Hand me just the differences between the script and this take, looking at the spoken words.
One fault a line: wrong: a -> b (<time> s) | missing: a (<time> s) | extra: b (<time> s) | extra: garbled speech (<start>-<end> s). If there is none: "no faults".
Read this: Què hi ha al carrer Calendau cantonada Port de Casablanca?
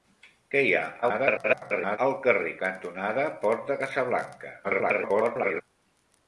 extra: garbled speech (1.0-2.0 s)
missing: Calendau (2.5 s)
extra: garbled speech (4.6-5.6 s)